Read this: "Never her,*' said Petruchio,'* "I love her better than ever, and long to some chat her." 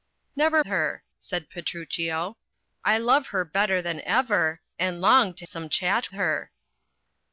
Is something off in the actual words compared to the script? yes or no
no